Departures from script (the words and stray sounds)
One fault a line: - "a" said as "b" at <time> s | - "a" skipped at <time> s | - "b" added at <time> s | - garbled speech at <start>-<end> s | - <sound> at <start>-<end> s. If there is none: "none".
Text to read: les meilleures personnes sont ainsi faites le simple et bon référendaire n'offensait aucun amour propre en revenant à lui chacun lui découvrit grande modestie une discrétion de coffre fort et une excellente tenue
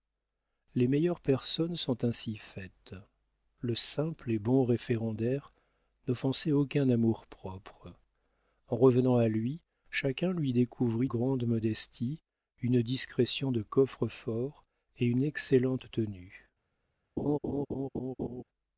- laugh at 17.2-18.4 s